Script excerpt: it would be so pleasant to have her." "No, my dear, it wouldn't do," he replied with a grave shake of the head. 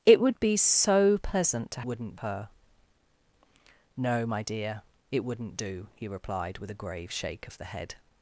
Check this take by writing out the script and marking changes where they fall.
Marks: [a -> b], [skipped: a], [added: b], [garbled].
it would be so pleasant to [have -> wouldn't] her." "No, my dear, it wouldn't do," he replied with a grave shake of the head.